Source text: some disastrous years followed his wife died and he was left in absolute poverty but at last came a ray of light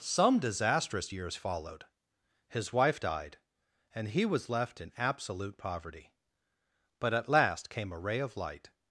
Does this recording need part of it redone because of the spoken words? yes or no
no